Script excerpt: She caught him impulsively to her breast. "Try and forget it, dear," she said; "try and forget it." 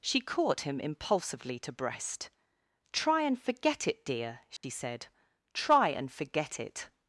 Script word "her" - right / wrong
wrong